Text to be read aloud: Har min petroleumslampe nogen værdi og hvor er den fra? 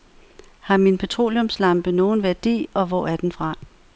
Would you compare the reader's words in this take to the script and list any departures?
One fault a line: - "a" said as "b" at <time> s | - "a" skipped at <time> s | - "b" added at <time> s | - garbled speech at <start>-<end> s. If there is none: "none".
none